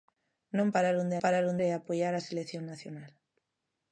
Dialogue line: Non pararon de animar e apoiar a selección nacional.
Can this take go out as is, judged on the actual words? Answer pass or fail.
fail